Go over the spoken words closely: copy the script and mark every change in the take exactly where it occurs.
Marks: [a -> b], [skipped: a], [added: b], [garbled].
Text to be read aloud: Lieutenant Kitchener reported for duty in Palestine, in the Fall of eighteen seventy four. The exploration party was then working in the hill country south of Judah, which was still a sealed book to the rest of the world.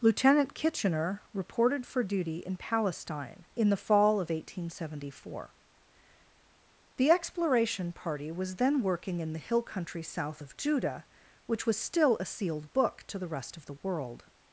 Lieutenant Kitchener reported for duty in Palestine, in the Fall of eighteen seventy four. The exploration party was then working in the hill country south of Judah, which was still a sealed book to the rest of the world.